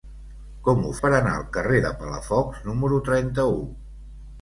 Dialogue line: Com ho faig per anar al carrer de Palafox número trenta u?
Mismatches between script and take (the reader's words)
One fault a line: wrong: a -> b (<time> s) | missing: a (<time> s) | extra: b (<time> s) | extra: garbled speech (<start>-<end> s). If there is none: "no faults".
missing: faig (0.9 s)